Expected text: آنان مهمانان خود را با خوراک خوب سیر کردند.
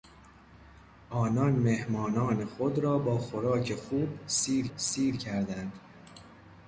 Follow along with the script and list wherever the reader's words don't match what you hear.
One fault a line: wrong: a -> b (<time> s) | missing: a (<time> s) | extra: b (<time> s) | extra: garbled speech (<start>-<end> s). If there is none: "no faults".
extra: سیر (4.8 s)